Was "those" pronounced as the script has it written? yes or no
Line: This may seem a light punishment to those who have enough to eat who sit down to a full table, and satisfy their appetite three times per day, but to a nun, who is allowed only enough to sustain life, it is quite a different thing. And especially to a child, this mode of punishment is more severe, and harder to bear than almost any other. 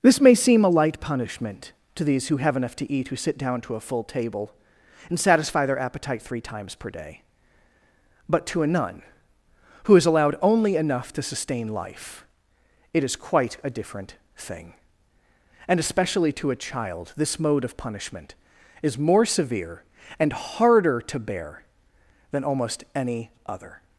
no